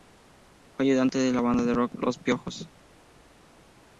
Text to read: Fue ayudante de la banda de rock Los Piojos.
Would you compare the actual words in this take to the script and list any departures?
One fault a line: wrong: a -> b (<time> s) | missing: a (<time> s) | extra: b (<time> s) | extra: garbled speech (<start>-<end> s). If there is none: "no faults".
no faults